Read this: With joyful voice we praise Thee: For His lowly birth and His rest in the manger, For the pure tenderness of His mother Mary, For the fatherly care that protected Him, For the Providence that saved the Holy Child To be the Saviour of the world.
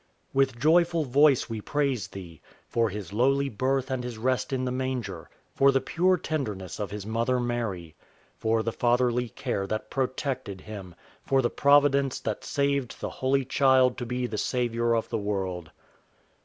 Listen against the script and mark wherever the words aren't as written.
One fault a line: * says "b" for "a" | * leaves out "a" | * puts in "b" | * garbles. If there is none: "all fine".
all fine